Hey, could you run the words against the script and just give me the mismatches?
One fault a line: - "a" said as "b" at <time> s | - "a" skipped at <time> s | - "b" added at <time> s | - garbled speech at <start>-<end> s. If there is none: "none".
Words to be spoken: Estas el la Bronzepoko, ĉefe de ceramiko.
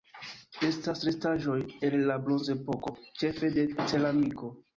- "restaĵoj" added at 1.1 s